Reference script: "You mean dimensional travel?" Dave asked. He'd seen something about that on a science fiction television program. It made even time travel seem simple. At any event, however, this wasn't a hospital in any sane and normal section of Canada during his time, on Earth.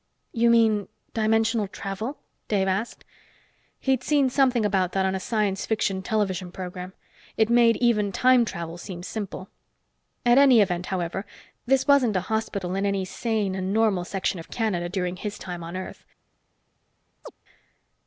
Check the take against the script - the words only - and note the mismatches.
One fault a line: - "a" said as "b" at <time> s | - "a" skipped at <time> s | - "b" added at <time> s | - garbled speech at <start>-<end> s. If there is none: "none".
none